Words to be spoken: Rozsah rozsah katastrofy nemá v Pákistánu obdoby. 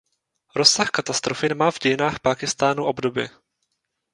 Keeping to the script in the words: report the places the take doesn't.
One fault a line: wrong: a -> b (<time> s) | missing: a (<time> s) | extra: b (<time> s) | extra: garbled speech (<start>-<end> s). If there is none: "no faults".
missing: rozsah (0.9 s)
extra: dějinách (1.8 s)